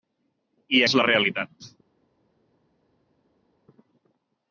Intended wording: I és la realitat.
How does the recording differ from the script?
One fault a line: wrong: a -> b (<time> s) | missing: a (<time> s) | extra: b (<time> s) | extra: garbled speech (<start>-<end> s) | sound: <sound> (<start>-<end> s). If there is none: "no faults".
no faults